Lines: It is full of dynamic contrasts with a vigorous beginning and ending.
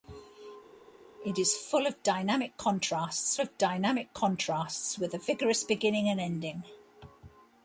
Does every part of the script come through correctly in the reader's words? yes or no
no